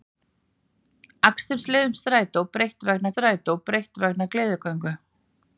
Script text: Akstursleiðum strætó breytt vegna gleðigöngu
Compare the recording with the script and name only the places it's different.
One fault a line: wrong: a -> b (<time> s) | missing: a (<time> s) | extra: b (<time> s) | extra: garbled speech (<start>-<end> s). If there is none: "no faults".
extra: strætó breytt vegna (3.1 s)